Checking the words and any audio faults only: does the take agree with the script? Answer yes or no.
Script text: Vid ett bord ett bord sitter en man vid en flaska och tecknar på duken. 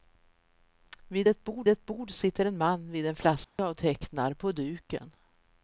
no